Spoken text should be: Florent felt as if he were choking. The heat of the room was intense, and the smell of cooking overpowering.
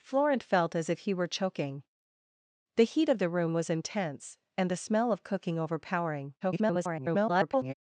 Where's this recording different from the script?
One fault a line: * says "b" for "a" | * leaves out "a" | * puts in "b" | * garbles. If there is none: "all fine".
* garbles